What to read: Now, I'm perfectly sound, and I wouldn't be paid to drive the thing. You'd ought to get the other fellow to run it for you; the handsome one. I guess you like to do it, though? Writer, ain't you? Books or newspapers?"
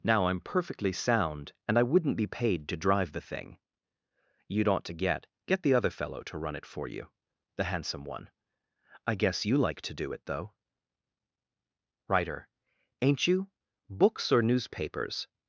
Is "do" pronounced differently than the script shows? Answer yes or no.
no